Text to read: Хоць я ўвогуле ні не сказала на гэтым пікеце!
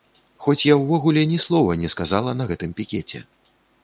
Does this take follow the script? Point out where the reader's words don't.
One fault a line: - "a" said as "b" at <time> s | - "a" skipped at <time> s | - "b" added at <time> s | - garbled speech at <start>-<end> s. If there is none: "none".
- "слова" added at 1.5 s